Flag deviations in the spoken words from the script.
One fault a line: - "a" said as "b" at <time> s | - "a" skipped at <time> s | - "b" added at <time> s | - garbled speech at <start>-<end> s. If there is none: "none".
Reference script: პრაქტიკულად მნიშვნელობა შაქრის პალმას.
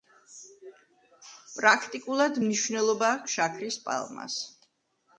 - "აქვს" added at 3.2 s